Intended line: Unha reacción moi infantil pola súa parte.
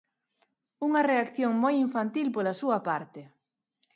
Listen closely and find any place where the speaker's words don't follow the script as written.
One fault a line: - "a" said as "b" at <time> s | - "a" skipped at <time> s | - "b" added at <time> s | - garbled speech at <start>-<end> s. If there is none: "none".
none